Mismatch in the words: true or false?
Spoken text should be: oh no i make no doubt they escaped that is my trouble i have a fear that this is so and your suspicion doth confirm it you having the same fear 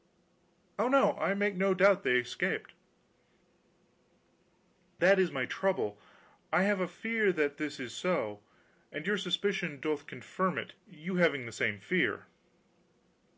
false